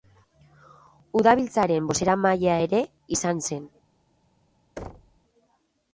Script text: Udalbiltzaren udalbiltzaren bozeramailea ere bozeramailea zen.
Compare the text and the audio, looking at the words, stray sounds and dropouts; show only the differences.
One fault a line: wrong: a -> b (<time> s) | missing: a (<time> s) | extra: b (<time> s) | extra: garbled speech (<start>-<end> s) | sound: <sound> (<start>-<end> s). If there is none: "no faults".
missing: udalbiltzaren (1.9 s)
wrong: bozeramailea -> izan (3.2 s)
sound: thud (4.8-5.2 s)